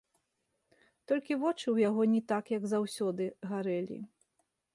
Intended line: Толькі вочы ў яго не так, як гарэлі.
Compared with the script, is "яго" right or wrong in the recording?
right